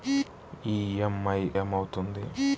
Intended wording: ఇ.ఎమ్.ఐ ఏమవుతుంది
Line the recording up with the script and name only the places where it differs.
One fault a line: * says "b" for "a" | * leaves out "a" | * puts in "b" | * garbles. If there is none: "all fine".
all fine